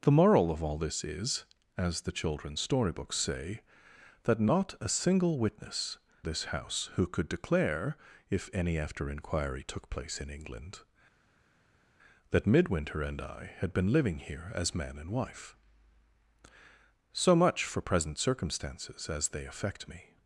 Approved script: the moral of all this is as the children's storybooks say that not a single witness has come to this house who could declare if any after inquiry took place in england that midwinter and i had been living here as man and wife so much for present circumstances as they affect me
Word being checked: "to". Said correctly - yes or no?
no